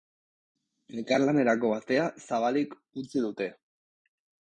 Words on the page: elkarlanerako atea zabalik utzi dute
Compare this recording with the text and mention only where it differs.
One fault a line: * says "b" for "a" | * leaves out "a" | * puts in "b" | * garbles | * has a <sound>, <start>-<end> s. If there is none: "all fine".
all fine